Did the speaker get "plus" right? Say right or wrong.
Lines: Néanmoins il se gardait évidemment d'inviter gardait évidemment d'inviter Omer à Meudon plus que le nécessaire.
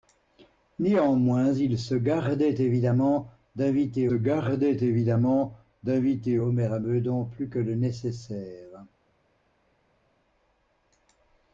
right